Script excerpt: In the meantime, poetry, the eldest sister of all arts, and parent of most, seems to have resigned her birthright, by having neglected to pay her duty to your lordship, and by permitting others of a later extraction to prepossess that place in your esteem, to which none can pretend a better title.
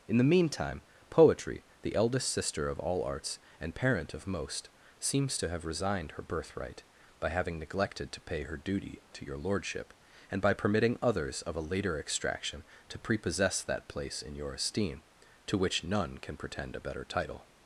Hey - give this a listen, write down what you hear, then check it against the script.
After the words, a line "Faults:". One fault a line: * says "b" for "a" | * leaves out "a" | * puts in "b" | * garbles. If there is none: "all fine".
In the meantime, poetry, the eldest sister of all arts, and parent of most, seems to have resigned her birthright, by having neglected to pay her duty to your lordship, and by permitting others of a later extraction to prepossess that place in your esteem, to which none can pretend a better title.
Faults:
all fine